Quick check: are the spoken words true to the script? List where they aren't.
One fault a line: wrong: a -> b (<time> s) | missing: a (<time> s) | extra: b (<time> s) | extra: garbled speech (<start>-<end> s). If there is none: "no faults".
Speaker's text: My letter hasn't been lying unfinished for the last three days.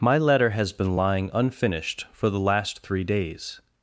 wrong: hasn't -> has (0.5 s)